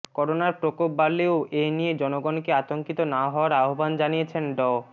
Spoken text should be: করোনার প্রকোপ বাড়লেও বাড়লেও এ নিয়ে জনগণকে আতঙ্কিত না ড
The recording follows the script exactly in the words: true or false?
false